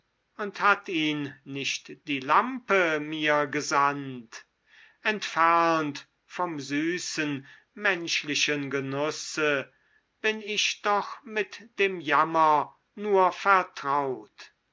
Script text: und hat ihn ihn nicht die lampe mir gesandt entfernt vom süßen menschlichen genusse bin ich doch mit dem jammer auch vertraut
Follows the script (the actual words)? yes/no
no